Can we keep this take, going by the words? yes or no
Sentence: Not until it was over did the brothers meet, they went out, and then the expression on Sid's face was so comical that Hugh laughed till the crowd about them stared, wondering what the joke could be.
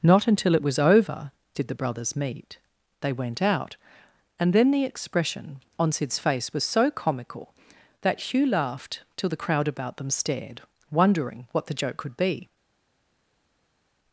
yes